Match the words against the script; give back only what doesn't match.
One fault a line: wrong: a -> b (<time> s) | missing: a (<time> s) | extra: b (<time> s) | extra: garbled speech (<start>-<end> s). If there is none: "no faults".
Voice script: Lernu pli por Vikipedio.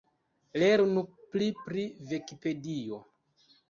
wrong: por -> pri (1.7 s)